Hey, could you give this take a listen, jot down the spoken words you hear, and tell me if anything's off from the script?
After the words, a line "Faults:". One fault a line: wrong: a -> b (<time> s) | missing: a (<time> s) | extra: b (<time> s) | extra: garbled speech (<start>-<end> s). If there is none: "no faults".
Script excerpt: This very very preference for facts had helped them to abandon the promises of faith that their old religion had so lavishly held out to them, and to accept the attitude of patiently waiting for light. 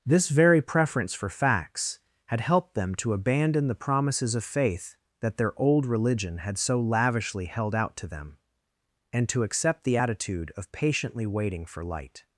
This very preference for facts had helped them to abandon the promises of faith that their old religion had so lavishly held out to them, and to accept the attitude of patiently waiting for light.
Faults:
missing: very (0.6 s)